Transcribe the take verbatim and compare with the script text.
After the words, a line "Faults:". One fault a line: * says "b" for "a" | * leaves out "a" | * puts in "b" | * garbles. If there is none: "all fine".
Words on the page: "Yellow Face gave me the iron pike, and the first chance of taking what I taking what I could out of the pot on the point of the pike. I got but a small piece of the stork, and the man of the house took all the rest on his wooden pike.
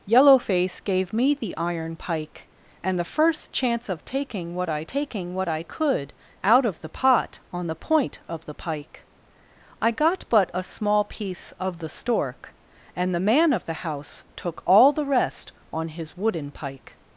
"Yellow Face gave me the iron pike, and the first chance of taking what I taking what I could out of the pot on the point of the pike. I got but a small piece of the stork, and the man of the house took all the rest on his wooden pike.
Faults:
all fine